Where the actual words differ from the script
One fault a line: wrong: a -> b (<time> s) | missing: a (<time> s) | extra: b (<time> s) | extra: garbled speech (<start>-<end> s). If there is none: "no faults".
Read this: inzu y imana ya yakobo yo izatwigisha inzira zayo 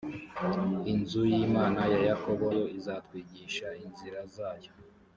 no faults